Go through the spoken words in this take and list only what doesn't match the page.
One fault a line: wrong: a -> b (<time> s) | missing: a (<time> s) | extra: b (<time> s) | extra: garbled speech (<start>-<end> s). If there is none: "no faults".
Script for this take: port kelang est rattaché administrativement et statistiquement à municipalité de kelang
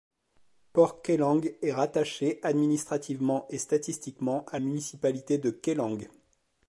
no faults